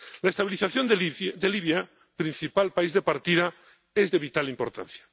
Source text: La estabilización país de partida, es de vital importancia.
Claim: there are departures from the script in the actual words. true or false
true